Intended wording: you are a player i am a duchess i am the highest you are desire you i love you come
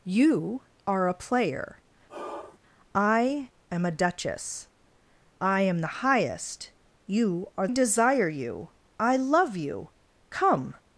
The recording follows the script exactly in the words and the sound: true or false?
false